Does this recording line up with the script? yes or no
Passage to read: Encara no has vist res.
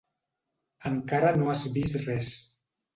yes